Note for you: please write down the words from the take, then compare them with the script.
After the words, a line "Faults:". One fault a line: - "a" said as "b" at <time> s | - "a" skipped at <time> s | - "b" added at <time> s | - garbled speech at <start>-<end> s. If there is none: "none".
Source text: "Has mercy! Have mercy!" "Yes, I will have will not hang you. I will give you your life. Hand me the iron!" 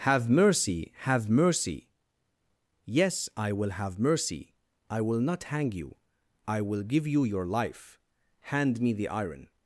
"Have mercy! Have mercy!" "Yes, I will have mercy; I will not hang you. I will give you your life. Hand me the iron!"
Faults:
- "Has" said as "Have" at 0.1 s
- "mercy I" added at 4.0 s